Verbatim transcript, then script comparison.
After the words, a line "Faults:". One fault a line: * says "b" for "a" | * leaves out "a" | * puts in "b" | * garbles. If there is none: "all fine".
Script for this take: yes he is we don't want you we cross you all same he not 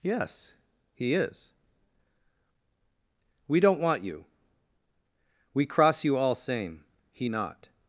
yes he is we don't want you we cross you all same he not
Faults:
all fine